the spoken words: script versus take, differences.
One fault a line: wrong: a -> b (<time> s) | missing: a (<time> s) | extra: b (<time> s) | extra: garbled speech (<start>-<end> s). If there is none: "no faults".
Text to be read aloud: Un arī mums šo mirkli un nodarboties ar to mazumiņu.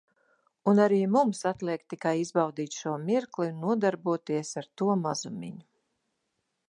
extra: atliek tikai izbaudīt (1.5 s)